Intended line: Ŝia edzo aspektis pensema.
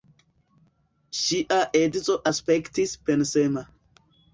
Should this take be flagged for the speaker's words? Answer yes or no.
no